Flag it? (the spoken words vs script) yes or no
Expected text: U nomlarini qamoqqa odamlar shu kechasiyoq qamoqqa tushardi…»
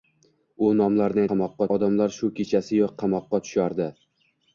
no